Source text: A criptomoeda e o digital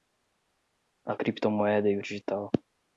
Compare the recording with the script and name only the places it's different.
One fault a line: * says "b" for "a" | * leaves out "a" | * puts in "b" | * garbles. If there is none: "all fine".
all fine